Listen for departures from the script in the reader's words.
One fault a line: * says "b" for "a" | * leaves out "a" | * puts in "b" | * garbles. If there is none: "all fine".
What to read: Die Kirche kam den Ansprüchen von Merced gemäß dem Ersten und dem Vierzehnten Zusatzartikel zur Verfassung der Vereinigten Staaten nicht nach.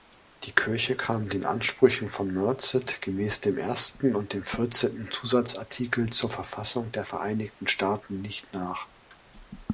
all fine